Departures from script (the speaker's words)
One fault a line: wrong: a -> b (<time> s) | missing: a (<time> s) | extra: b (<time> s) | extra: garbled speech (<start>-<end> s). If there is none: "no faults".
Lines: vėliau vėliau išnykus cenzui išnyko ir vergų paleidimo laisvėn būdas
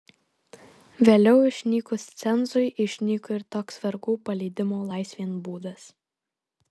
missing: vėliau (1.4 s)
extra: toks (3.6 s)